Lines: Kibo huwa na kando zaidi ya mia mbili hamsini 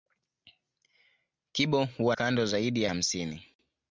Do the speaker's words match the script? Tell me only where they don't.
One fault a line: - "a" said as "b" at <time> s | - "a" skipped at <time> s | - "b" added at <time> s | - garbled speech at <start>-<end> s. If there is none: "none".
- "na" skipped at 2.1 s
- "mia mbili" skipped at 2.9 s